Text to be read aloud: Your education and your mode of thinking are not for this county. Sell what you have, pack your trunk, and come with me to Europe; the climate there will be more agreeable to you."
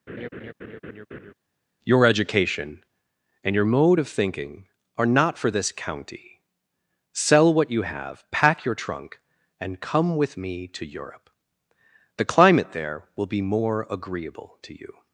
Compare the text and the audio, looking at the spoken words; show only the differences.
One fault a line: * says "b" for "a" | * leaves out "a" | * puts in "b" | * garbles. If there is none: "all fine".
all fine